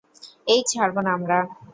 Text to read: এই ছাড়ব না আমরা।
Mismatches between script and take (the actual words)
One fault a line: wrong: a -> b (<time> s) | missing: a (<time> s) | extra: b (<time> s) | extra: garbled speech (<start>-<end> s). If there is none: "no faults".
no faults